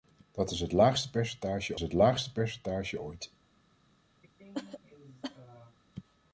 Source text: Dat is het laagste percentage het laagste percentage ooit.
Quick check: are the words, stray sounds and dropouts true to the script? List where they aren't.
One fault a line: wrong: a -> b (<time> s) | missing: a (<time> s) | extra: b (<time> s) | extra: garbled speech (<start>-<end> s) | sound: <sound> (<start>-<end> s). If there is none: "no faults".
sound: cough (4.2-5.8 s)